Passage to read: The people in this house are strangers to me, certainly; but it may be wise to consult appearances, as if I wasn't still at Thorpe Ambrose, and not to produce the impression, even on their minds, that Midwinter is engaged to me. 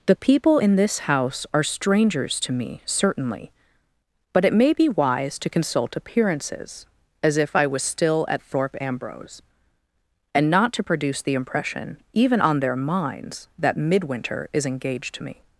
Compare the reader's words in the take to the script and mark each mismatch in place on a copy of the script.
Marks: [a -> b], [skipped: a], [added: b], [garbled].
The people in this house are strangers to me, certainly; but it may be wise to consult appearances, as if I [wasn't -> was] still at Thorpe Ambrose, and not to produce the impression, even on their minds, that Midwinter is engaged to me.